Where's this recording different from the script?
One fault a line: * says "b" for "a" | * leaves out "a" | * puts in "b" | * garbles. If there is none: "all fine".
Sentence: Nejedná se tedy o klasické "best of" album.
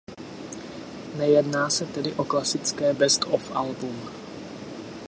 all fine